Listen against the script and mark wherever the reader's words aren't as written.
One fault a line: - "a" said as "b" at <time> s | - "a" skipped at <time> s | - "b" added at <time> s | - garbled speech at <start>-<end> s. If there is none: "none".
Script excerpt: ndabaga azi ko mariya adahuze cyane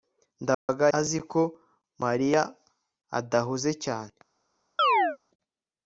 none